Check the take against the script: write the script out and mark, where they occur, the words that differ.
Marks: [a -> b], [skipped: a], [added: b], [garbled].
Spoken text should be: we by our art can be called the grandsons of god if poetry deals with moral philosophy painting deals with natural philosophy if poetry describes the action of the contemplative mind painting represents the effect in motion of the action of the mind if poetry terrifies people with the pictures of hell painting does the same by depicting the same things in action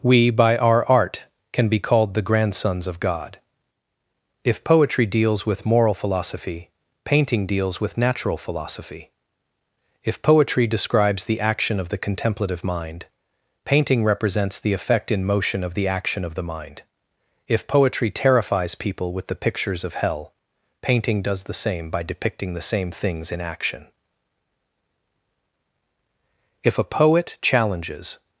we by our art can be called the grandsons of god if poetry deals with moral philosophy painting deals with natural philosophy if poetry describes the action of the contemplative mind painting represents the effect in motion of the action of the mind if poetry terrifies people with the pictures of hell painting does the same by depicting the same things in action [added: if a poet challenges]